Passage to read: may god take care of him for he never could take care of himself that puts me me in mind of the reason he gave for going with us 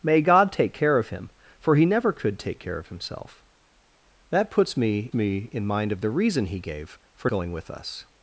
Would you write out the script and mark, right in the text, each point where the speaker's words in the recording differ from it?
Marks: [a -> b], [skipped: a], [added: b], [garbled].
may god take care of him for he never could take care of himself that puts me me in mind of the reason he gave for going with us